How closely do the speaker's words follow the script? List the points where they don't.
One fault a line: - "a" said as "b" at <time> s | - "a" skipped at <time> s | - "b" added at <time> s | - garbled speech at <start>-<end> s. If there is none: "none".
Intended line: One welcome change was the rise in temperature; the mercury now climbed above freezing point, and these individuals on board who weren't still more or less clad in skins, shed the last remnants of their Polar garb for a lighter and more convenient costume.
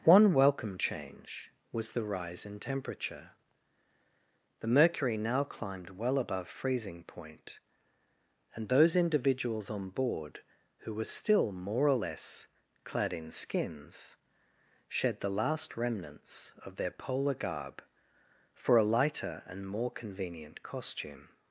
- "well" added at 5.9 s
- "these" said as "those" at 8.7 s
- "weren't" said as "were" at 10.9 s